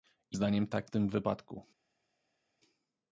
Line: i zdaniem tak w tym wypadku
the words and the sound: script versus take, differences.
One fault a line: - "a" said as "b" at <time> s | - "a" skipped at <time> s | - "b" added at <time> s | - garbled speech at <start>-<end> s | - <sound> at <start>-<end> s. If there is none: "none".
none